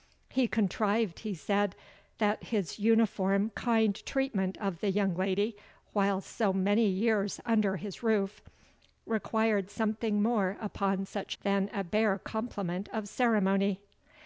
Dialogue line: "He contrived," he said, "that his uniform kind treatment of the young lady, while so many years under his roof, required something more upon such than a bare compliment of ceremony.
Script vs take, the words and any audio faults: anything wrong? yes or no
no